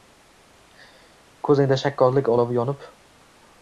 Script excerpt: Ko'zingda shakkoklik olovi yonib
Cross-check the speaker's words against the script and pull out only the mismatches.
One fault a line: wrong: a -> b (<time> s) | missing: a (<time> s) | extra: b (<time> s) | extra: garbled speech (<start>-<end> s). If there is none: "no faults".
no faults